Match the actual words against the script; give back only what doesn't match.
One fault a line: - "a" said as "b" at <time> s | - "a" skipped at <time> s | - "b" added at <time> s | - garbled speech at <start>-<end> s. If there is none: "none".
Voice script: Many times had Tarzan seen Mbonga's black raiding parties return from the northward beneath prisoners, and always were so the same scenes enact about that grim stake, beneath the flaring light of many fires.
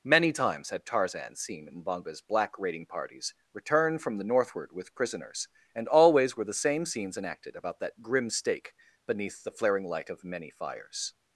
- "beneath" said as "with" at 4.7 s
- "so" skipped at 6.4 s
- "enact" said as "enacted" at 7.2 s